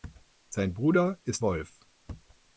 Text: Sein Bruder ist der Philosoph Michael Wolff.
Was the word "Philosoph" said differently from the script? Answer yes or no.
yes